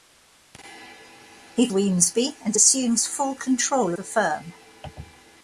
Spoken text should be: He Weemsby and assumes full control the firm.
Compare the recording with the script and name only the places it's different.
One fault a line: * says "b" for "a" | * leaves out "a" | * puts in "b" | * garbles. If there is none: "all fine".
all fine